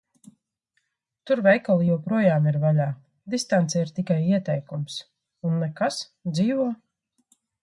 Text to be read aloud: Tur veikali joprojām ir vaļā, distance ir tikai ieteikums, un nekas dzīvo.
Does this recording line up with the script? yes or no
yes